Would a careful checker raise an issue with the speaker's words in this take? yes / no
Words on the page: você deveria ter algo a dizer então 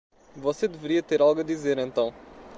no